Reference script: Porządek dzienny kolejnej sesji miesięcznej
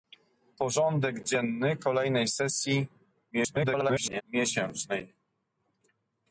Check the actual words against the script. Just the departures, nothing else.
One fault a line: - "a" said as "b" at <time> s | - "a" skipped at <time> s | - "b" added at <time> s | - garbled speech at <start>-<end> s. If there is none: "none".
- garbled speech at 3.3-4.2 s